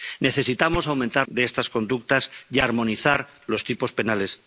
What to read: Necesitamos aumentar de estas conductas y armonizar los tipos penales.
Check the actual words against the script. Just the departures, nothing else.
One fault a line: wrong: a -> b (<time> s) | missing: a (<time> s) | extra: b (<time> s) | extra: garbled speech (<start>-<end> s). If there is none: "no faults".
no faults